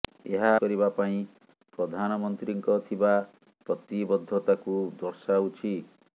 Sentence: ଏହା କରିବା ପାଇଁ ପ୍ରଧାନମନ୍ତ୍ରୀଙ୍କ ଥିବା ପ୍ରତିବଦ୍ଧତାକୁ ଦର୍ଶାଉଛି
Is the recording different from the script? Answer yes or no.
no